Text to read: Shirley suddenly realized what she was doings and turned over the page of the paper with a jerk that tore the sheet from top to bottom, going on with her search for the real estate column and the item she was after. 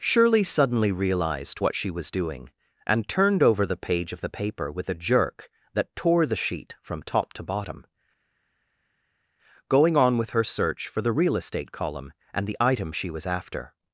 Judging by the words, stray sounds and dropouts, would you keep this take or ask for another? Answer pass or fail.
fail